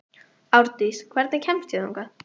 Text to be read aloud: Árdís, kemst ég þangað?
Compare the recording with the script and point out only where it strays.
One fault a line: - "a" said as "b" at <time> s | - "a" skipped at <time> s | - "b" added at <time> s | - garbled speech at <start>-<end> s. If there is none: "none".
- "hvernig" added at 1.2 s